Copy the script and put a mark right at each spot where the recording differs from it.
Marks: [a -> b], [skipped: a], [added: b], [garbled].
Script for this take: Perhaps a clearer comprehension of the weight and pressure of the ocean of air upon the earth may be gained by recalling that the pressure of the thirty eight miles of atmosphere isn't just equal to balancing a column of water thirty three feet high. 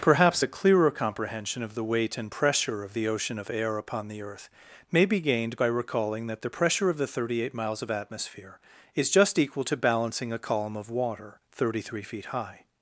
Perhaps a clearer comprehension of the weight and pressure of the ocean of air upon the earth may be gained by recalling that the pressure of the thirty eight miles of atmosphere [isn't -> is] just equal to balancing a column of water thirty three feet high.